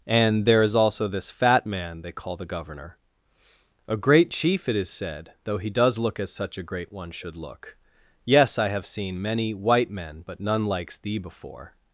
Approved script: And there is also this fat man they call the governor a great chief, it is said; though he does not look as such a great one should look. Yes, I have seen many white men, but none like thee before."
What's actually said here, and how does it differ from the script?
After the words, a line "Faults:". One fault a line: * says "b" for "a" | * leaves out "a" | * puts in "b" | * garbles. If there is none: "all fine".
And there is also this fat man they call the governor a great chief, it is said; though he does look as such a great one should look. Yes, I have seen many white men, but none likes thee before."
Faults:
* leaves out "not"
* says "likes" for "like"